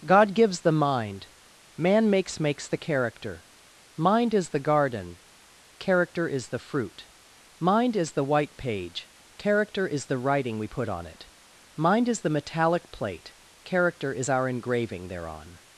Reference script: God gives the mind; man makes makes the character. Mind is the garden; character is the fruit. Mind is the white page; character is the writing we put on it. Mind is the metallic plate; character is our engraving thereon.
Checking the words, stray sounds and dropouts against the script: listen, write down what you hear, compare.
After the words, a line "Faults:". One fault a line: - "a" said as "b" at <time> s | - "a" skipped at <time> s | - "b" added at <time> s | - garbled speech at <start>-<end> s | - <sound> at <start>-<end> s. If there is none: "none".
God gives the mind; man makes makes the character. Mind is the garden; character is the fruit. Mind is the white page; character is the writing we put on it. Mind is the metallic plate; character is our engraving thereon.
Faults:
none